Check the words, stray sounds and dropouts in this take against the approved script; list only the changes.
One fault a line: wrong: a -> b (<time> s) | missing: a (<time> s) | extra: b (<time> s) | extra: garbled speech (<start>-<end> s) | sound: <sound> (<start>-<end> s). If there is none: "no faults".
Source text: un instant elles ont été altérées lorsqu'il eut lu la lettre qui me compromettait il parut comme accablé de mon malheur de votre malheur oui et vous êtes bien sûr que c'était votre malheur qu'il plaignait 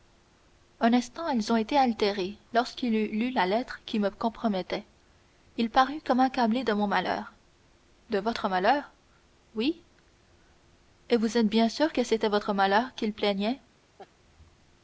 sound: laugh (14.0-14.1 s)